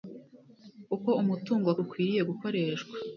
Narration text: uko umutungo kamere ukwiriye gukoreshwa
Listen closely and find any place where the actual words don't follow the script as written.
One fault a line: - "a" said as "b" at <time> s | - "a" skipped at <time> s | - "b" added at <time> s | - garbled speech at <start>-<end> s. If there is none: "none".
- "kamere" skipped at 1.7 s